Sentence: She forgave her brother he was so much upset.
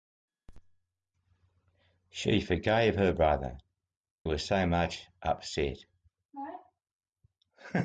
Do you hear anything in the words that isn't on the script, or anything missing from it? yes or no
yes